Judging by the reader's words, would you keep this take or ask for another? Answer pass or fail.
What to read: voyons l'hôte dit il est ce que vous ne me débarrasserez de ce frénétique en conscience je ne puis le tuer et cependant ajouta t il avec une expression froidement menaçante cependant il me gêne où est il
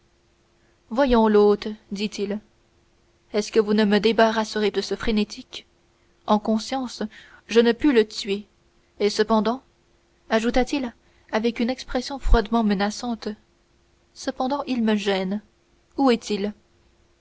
pass